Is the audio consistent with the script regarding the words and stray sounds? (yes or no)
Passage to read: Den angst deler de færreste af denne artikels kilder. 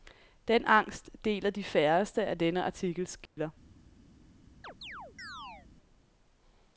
no